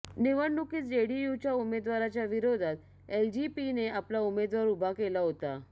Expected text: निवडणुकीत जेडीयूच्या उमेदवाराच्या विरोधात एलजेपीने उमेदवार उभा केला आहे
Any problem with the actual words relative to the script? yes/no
yes